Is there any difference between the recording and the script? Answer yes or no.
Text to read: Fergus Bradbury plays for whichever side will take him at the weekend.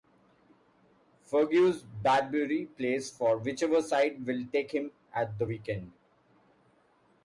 no